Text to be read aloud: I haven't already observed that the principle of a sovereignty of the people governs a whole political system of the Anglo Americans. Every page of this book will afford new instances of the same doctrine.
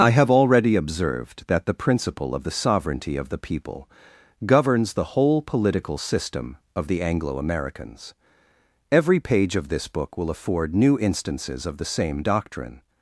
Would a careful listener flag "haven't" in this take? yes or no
yes